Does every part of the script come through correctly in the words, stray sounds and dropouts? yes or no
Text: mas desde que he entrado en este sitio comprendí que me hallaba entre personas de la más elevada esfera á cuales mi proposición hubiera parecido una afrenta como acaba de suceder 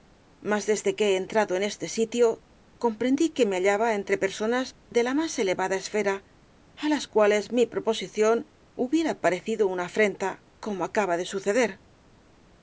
no